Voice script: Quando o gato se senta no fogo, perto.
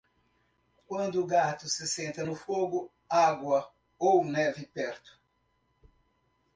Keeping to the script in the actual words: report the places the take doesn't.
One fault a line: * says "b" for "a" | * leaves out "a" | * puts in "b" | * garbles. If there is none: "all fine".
* puts in "água ou neve"